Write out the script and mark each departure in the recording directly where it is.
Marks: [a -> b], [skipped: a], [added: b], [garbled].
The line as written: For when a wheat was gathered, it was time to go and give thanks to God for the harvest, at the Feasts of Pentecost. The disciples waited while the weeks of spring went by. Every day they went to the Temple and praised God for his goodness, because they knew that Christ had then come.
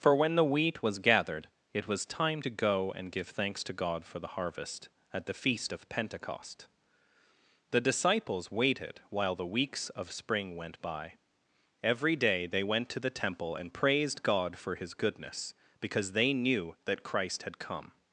For when [a -> the] wheat was gathered, it was time to go and give thanks to God for the harvest, at the [Feasts -> Feast] of Pentecost. The disciples waited while the weeks of spring went by. Every day they went to the Temple and praised God for his goodness, because they knew that Christ had [skipped: then] come.